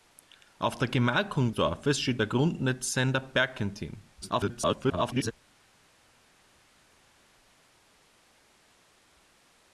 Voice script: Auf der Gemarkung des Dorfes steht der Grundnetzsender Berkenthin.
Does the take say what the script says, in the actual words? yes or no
no